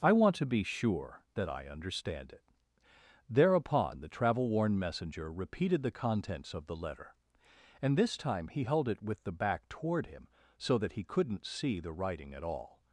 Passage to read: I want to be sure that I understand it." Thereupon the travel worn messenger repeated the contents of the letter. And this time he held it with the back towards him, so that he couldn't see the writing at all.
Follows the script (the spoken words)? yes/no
no